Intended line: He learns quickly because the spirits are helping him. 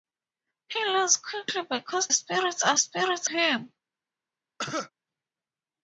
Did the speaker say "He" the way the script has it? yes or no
yes